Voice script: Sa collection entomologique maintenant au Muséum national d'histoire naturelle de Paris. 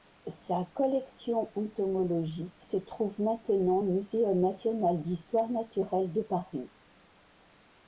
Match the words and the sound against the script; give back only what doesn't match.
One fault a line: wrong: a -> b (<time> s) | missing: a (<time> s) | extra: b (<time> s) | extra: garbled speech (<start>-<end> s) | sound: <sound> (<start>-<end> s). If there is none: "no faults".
extra: se trouve (2.6 s)